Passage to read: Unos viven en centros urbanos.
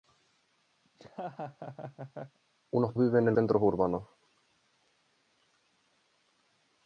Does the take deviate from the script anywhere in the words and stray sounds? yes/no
yes